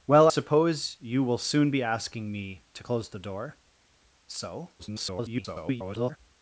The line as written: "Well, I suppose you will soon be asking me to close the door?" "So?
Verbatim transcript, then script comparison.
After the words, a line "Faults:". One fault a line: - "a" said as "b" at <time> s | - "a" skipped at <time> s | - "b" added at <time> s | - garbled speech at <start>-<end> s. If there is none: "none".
"Well, suppose you will soon be asking me to close the door?" "So? [garbled]
Faults:
- "I" skipped at 0.3 s
- garbled speech at 4.8-6.2 s